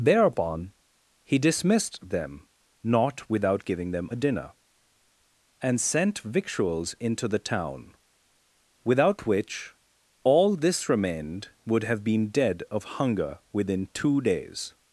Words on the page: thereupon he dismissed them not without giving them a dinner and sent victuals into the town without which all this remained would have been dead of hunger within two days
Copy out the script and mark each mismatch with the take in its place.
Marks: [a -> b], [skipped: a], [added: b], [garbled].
thereupon he dismissed them not without giving them a dinner and sent victuals into the town without which all this remained would have been dead of hunger within two days